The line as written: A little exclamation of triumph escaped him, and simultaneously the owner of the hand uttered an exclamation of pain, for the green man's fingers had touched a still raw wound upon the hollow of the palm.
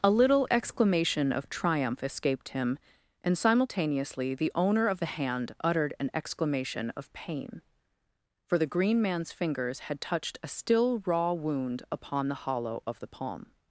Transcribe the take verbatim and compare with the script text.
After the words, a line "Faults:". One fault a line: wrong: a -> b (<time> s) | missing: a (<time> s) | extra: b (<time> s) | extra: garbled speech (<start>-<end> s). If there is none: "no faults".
A little exclamation of triumph escaped him, and simultaneously the owner of the hand uttered an exclamation of pain, for the green man's fingers had touched a still raw wound upon the hollow of the palm.
Faults:
no faults